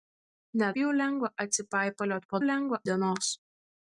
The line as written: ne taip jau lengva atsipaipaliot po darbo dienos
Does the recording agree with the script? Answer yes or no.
no